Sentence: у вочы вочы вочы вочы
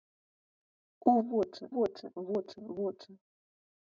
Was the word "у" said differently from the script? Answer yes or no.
no